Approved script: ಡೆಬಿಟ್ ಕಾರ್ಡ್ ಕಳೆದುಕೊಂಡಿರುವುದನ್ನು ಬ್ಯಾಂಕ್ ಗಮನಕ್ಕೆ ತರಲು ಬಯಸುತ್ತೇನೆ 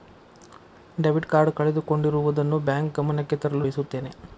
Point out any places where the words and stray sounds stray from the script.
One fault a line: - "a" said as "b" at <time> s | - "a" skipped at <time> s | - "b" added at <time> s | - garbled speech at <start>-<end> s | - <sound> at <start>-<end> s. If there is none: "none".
none